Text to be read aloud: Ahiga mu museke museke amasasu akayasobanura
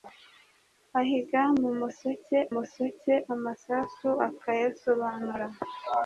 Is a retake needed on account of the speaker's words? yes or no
no